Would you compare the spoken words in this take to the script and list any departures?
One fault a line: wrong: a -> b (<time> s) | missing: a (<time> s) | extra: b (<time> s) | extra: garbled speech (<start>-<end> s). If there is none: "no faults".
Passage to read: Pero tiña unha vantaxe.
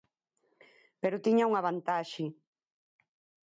no faults